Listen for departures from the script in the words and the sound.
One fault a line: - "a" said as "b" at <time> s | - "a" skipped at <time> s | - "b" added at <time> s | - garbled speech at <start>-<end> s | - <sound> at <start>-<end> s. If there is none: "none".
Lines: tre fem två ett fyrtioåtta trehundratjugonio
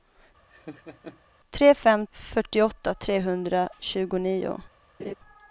- laugh at 0.5-1.2 s
- "två ett" skipped at 2.1 s
- laugh at 5.0-5.1 s